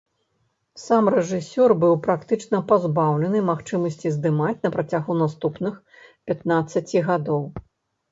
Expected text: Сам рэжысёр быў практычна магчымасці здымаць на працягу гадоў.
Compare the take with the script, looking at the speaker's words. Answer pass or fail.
fail